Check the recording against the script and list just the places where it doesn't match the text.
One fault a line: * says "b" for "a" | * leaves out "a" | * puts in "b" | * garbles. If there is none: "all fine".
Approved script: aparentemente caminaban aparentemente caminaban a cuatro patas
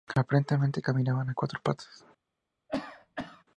* leaves out "aparentemente caminaban"